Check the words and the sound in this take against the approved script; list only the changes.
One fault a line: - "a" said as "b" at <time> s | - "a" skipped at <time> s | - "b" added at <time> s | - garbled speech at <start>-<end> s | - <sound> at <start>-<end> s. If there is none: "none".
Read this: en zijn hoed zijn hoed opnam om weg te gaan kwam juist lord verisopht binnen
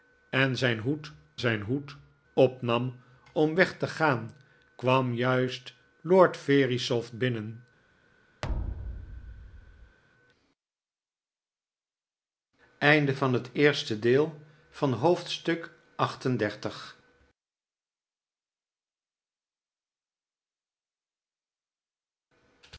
- thud at 8.4-10.0 s